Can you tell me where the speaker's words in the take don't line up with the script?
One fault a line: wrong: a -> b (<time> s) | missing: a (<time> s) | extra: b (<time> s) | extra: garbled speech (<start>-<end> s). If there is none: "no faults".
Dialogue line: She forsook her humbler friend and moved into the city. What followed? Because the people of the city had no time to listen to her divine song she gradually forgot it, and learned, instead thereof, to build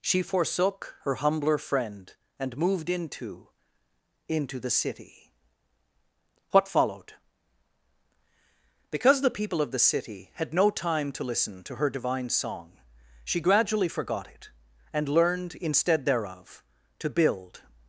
extra: into (4.3 s)